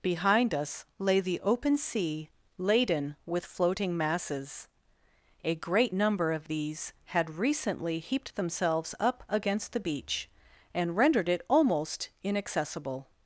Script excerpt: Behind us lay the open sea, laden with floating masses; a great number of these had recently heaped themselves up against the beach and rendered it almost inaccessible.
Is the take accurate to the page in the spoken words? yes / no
yes